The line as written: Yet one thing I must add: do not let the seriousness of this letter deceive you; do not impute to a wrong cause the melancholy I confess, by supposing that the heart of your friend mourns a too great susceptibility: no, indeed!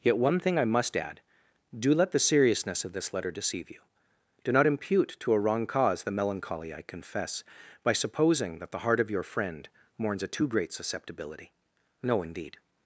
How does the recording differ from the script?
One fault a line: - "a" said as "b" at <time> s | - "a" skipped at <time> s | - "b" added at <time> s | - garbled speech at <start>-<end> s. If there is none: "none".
- "not" skipped at 1.9 s